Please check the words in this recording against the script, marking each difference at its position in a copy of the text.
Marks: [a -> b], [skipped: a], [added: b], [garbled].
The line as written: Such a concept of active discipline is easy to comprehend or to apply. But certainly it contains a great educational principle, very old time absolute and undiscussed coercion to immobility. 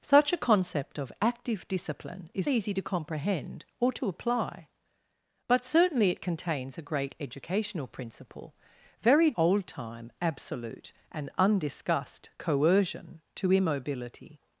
Such a concept of active discipline is easy to comprehend or to apply. But certainly it contains a great educational principle, very old time absolute and undiscussed coercion to immobility.